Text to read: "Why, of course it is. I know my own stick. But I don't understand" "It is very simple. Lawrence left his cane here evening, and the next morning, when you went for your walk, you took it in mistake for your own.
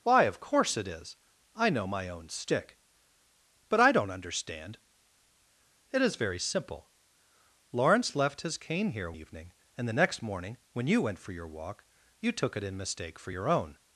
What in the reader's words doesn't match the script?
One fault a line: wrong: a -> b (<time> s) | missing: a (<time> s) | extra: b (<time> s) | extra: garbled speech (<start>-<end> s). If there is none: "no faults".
no faults